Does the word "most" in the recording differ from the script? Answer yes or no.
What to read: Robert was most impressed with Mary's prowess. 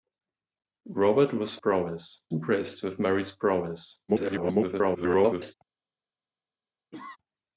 yes